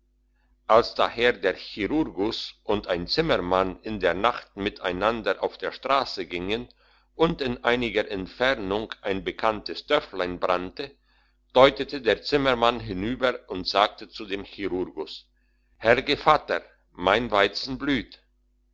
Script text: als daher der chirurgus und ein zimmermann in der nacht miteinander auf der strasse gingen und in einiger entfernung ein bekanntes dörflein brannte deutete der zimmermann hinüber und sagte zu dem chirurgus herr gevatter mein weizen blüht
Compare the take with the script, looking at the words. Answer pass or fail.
pass